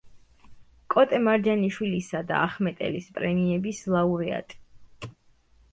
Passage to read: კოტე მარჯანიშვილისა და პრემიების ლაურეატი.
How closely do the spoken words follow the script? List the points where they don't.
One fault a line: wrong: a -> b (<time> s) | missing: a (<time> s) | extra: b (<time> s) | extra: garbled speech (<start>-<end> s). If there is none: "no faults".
extra: ახმეტელის (2.5 s)